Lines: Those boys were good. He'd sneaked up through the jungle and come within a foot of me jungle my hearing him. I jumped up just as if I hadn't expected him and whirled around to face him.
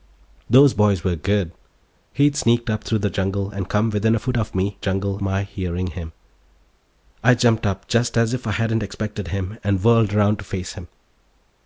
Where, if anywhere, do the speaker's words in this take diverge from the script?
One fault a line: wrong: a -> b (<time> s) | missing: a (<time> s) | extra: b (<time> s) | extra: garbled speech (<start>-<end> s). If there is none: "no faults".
no faults